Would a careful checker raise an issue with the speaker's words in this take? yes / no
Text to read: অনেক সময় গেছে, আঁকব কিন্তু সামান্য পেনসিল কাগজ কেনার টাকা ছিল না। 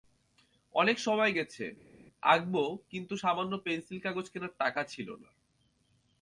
no